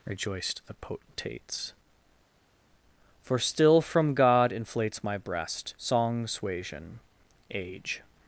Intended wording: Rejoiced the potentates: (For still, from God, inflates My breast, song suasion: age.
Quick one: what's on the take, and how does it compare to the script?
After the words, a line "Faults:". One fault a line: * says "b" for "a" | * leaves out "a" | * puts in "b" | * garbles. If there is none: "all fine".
Rejoiced the potentates: (For still, from God, inflates My breast, song suasion: age.
Faults:
all fine